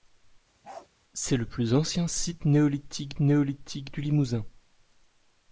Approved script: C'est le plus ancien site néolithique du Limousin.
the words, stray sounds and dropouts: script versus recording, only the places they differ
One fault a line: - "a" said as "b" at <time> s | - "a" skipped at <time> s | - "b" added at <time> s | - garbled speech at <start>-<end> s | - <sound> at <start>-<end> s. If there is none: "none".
- bark at 0.6-0.9 s
- "néolithique" added at 3.2 s